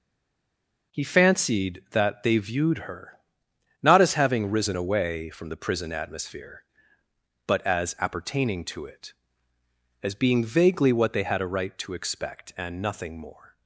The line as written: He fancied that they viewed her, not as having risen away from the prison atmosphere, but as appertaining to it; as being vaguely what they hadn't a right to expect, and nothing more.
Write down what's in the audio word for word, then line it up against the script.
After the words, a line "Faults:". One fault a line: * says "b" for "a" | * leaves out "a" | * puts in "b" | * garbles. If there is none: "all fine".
He fancied that they viewed her, not as having risen away from the prison atmosphere, but as appertaining to it; as being vaguely what they had a right to expect, and nothing more.
Faults:
* says "had" for "hadn't"